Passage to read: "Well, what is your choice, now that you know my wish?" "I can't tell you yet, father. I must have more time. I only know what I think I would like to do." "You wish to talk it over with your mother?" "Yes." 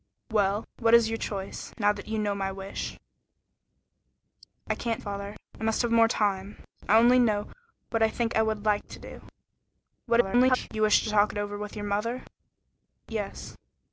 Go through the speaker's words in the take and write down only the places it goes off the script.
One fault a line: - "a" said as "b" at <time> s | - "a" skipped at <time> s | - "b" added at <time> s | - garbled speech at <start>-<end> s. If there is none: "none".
- "tell you yet" skipped at 5.0 s
- garbled speech at 10.1-10.7 s